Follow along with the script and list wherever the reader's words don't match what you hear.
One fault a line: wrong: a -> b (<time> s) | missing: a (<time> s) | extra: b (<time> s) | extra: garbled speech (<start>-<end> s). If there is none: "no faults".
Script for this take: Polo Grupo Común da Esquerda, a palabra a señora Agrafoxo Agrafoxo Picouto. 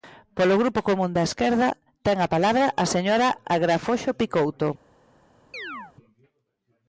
extra: ten (2.0 s)
missing: Agrafoxo (4.1 s)